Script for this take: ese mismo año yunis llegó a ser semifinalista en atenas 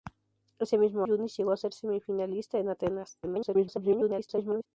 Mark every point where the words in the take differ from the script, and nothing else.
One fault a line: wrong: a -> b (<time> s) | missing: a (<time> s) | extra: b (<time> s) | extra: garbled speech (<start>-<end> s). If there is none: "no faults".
missing: año (1.1 s)
extra: garbled speech (3.2-4.7 s)